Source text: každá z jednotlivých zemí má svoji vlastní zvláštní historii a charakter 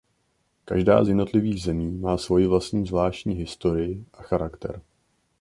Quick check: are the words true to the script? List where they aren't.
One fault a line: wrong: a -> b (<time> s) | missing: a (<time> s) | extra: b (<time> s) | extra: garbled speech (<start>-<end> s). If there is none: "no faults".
no faults